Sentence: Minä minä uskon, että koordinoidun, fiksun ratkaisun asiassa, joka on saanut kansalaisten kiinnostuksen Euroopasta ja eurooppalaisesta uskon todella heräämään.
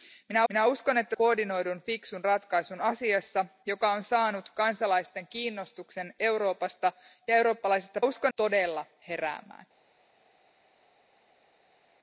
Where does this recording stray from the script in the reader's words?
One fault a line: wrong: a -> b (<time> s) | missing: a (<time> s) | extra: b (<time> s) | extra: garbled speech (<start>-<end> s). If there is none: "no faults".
no faults